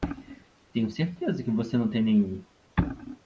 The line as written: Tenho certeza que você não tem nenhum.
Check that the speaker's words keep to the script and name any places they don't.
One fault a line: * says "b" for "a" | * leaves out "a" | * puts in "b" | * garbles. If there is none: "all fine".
all fine